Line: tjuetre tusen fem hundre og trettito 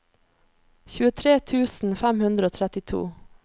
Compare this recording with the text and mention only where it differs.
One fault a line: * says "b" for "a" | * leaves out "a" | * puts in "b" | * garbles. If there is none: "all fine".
all fine